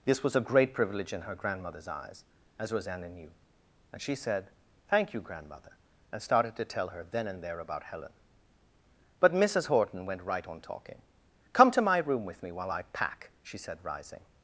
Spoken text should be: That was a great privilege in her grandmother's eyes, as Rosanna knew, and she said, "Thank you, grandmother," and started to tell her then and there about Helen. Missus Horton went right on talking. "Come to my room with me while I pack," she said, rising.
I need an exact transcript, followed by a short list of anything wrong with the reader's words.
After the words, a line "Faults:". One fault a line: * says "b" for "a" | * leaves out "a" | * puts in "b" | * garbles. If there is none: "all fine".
This was a great privilege in her grandmother's eyes, as Rosanna knew, and she said, "Thank you, grandmother," and started to tell her then and there about Helen. But Missus Horton went right on talking. "Come to my room with me while I pack," she said, rising.
Faults:
* says "This" for "That"
* puts in "But"